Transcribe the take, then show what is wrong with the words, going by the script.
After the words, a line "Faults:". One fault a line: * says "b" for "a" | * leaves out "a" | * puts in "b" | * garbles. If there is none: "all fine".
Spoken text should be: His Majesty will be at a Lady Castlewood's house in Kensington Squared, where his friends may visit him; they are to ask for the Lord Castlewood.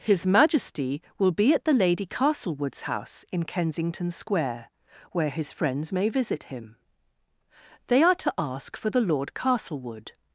His Majesty will be at the Lady Castlewood's house in Kensington Square, where his friends may visit him; they are to ask for the Lord Castlewood.
Faults:
* says "the" for "a"
* says "Square" for "Squared"